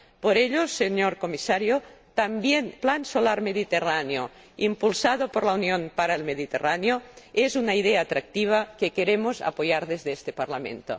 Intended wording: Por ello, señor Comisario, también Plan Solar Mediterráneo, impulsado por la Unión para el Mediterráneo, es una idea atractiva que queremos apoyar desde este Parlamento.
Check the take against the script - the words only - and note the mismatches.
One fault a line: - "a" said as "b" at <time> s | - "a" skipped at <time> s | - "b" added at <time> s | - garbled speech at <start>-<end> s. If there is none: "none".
none